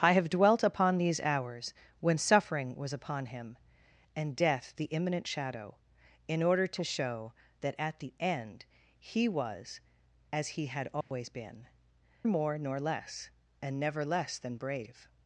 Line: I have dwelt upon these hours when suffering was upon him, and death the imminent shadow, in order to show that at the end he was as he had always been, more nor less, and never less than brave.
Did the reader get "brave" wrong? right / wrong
right